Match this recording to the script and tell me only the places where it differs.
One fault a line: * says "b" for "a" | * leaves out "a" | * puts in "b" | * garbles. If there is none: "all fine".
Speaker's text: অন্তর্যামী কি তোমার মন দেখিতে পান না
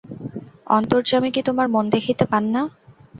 all fine